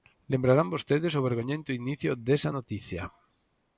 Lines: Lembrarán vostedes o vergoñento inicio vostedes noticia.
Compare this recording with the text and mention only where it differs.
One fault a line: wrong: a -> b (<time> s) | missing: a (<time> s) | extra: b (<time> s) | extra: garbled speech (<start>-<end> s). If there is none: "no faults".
wrong: vostedes -> desa (2.3 s)